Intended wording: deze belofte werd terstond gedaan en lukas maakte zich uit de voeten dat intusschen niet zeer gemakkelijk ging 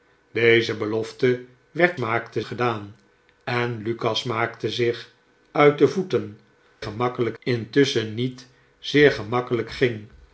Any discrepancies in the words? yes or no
yes